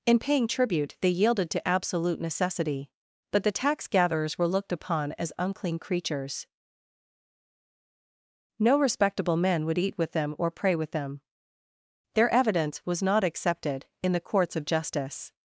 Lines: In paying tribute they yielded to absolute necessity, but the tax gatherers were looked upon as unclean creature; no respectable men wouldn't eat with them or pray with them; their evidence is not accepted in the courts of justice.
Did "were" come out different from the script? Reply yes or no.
no